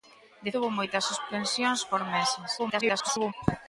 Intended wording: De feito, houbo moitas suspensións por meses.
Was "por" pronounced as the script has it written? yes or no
yes